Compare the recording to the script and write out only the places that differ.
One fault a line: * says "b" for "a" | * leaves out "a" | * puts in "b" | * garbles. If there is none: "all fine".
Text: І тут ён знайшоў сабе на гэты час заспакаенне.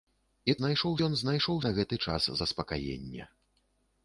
* says "знайшоў" for "тут"
* leaves out "сабе"